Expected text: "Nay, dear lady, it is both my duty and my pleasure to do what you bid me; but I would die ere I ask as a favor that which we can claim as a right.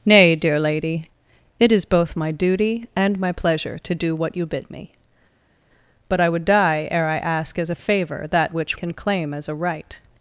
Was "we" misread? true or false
true